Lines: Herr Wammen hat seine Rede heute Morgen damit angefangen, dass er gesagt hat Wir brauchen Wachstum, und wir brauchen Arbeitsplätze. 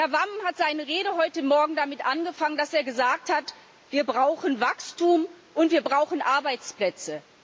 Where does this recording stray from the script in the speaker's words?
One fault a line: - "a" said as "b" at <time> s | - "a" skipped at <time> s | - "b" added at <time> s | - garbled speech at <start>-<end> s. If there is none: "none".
none